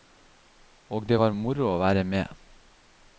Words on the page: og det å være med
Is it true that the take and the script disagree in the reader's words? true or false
true